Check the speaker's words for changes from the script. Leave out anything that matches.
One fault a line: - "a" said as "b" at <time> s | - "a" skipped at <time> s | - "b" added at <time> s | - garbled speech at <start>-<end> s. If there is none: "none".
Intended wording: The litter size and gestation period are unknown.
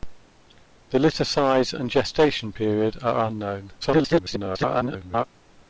- garbled speech at 3.8-5.3 s